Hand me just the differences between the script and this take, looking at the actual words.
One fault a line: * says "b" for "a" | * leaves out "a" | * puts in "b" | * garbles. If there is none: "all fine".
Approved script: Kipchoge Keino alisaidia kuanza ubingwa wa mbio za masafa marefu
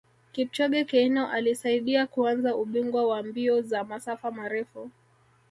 all fine